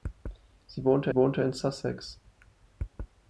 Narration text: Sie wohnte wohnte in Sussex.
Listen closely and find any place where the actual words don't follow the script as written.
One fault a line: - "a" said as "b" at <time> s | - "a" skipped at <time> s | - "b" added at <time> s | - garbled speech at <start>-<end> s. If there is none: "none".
none